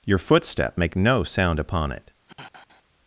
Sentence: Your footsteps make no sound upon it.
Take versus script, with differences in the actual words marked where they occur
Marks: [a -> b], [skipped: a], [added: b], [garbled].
Your [footsteps -> footstep] make no sound upon it.